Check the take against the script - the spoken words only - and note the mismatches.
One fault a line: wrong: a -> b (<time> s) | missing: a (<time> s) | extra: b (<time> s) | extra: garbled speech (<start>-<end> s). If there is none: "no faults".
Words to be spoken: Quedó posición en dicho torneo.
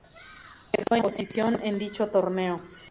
no faults